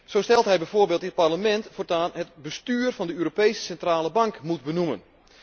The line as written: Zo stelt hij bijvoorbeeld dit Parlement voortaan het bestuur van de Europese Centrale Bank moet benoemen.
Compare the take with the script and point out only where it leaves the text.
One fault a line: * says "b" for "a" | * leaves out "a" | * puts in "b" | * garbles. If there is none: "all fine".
all fine